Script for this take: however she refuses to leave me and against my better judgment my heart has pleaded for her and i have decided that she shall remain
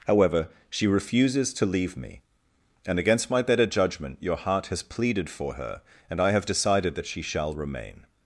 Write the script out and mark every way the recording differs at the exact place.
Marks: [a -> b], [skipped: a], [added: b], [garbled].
however she refuses to leave me and against my better judgment [my -> your] heart has pleaded for her and i have decided that she shall remain